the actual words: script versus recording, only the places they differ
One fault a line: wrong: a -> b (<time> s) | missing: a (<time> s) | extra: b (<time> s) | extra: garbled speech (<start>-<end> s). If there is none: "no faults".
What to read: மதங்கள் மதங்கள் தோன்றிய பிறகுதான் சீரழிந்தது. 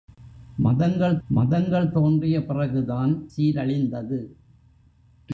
no faults